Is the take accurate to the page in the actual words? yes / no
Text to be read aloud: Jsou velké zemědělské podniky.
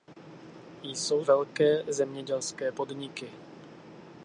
yes